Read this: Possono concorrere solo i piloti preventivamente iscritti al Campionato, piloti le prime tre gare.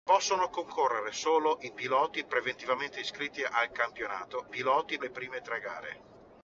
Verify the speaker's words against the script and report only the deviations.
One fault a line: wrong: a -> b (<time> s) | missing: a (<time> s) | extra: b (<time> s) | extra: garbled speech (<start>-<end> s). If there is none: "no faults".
no faults